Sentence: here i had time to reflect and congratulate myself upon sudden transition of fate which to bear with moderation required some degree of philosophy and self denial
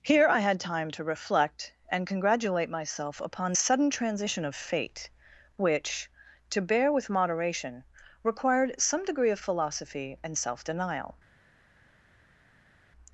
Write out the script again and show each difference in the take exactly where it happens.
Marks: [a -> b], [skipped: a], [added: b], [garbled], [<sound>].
here i had time to reflect and congratulate myself upon sudden transition of fate which to bear with moderation required some degree of philosophy and self denial